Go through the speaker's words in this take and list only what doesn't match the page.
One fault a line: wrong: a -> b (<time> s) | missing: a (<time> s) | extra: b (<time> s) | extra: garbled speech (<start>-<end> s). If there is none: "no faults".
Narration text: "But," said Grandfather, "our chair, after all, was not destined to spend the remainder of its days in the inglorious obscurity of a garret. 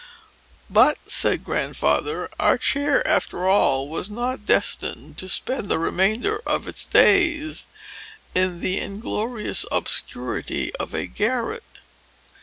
no faults